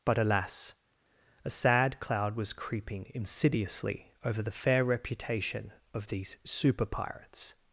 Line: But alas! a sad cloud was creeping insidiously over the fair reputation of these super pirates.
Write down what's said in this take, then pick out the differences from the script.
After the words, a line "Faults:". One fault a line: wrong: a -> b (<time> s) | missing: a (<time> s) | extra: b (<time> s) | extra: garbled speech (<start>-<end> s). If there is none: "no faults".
But alas! a sad cloud was creeping insidiously over the fair reputation of these super pirates.
Faults:
no faults